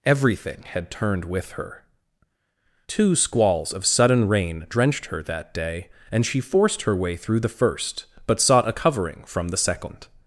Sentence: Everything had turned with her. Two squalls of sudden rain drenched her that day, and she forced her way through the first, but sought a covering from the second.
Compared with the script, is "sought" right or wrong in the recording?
right